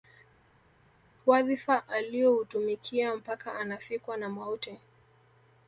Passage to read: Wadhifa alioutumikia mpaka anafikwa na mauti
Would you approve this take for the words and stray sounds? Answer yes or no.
yes